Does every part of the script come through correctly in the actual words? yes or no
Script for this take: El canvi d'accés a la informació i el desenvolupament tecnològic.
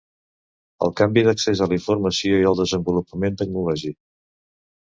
yes